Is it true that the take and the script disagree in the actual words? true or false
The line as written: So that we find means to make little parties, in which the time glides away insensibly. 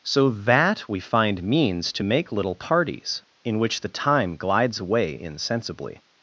false